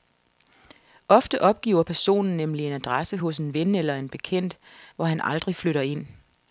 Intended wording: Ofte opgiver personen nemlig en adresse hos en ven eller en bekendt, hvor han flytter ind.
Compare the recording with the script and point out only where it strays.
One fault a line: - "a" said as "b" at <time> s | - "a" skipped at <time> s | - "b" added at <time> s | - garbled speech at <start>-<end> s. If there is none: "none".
- "aldrig" added at 5.2 s